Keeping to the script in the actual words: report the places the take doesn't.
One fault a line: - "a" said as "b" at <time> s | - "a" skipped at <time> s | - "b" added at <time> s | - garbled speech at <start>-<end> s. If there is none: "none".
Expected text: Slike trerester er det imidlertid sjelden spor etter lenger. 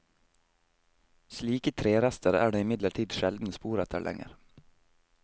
none